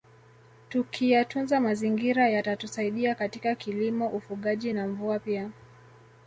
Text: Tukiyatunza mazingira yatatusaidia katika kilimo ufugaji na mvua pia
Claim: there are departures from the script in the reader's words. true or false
false